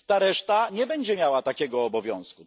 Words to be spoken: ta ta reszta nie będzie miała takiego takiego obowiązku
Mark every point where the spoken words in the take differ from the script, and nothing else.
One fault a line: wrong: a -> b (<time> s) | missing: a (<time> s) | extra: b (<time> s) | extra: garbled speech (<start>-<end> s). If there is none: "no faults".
missing: ta (0.2 s)
missing: takiego (1.8 s)